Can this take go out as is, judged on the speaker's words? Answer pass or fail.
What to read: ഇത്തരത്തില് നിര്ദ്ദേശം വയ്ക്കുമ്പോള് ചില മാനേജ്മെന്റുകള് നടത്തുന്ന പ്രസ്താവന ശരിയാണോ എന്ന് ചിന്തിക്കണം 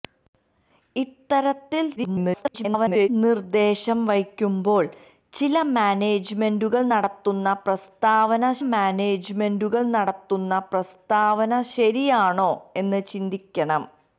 fail